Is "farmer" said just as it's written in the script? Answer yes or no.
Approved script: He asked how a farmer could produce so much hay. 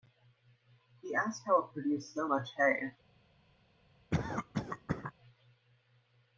no